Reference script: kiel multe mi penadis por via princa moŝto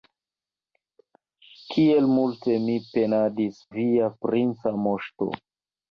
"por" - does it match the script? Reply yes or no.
no